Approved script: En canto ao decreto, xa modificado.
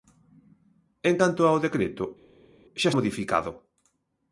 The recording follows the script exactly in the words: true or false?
true